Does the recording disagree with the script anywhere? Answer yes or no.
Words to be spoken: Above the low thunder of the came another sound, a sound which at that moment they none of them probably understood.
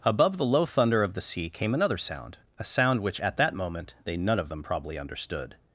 yes